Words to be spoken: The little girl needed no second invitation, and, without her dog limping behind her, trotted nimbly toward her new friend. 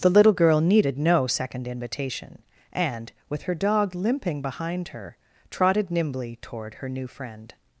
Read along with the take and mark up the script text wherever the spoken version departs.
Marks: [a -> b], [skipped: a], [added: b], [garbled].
The little girl needed no second invitation, and, [without -> with] her dog limping behind her, trotted nimbly toward her new friend.